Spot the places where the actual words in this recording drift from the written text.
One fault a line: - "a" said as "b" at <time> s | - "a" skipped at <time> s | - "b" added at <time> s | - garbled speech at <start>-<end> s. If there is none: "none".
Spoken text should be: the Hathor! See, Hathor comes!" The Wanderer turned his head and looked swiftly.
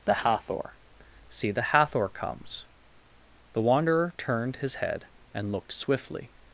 - "the" added at 1.5 s